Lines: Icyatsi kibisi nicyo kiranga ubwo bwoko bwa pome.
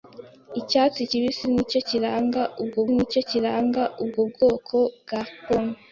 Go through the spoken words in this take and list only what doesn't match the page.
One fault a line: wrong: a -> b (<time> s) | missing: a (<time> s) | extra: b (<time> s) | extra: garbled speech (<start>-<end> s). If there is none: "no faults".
extra: nicyo kiranga ubwo (2.9 s)